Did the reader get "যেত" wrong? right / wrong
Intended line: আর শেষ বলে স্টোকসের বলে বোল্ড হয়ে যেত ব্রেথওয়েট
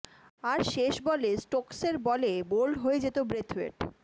right